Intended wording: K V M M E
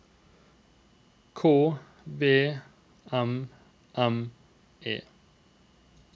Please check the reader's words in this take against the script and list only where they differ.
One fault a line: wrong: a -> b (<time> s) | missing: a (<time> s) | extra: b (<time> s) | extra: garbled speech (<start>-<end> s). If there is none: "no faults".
no faults